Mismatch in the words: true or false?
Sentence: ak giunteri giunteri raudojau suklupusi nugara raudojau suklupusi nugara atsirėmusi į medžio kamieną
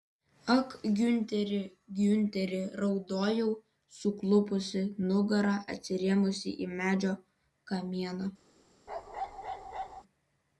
true